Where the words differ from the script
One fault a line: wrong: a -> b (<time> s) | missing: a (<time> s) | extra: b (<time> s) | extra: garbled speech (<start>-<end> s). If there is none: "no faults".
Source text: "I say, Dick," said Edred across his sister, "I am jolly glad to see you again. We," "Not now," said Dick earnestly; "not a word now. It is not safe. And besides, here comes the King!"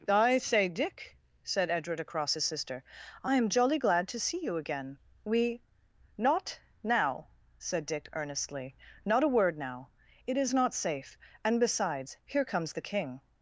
no faults